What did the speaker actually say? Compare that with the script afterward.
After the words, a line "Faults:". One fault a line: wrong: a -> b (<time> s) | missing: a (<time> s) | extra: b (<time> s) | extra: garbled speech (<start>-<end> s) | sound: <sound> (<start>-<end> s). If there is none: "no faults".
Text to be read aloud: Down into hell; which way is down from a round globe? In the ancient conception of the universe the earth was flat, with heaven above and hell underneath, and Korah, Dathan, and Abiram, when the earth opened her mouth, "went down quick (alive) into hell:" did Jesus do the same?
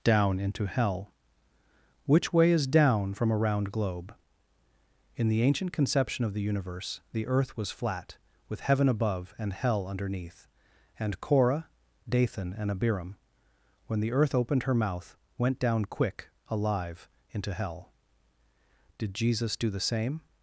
Down into hell; which way is down from a round globe? In the ancient conception of the universe the earth was flat, with heaven above and hell underneath, and Korah, Dathan, and Abiram, when the earth opened her mouth, "went down quick (alive) into hell:" did Jesus do the same?
Faults:
no faults